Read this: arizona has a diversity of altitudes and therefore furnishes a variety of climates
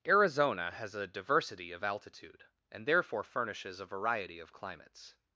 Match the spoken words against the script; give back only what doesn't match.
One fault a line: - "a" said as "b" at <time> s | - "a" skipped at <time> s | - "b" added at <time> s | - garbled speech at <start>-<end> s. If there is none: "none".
- "altitudes" said as "altitude" at 1.8 s